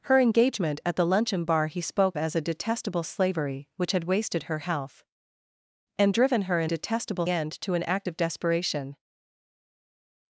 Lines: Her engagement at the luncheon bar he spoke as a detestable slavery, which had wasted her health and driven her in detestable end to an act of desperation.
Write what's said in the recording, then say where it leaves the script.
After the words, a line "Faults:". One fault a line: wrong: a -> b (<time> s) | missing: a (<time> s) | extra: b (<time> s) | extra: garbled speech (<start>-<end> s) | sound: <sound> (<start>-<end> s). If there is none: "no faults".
Her engagement at the luncheon bar he spoke as a detestable slavery, which had wasted her health and driven her in detestable end to an act of desperation.
Faults:
no faults